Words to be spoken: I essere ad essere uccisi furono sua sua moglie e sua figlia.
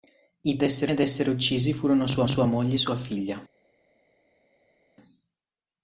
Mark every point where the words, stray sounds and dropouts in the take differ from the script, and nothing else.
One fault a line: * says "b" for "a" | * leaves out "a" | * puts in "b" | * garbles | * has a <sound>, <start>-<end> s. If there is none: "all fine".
all fine